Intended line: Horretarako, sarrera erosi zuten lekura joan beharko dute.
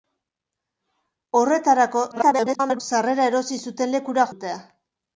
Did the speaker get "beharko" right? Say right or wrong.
wrong